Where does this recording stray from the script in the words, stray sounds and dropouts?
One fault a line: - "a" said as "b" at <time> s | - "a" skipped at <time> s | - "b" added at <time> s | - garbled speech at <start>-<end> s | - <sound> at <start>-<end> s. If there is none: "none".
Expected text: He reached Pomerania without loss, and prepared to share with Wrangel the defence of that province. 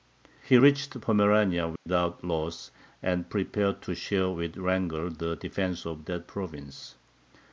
- dropout at 1.8-1.9 s